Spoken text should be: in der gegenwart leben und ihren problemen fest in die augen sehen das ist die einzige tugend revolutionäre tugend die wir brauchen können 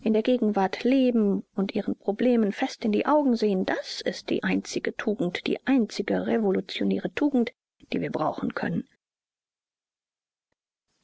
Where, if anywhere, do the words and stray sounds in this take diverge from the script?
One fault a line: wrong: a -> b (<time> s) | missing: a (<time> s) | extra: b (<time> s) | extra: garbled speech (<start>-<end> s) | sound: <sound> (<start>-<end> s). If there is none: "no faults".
extra: die einzige (5.5 s)